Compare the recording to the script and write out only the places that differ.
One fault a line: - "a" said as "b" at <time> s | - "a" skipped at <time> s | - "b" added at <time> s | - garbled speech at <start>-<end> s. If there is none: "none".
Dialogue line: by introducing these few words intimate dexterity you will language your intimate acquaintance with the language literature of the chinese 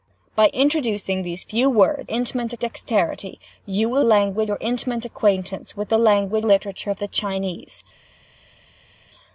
none